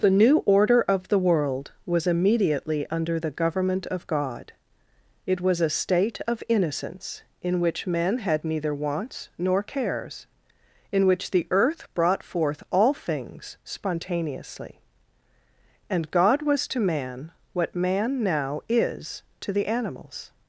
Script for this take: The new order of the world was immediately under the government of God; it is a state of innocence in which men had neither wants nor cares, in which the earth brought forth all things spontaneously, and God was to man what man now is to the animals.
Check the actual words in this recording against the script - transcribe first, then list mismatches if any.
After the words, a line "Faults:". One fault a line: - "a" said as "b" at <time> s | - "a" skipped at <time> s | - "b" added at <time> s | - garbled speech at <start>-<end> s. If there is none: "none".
The new order of the world was immediately under the government of God; it was a state of innocence in which men had neither wants nor cares, in which the earth brought forth all things spontaneously, and God was to man what man now is to the animals.
Faults:
- "is" said as "was" at 5.4 s